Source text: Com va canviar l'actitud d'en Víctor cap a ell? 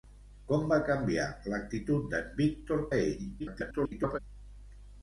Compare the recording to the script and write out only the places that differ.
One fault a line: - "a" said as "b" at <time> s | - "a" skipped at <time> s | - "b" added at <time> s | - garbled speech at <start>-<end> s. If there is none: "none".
- "cap" skipped at 2.9 s
- garbled speech at 3.4-4.2 s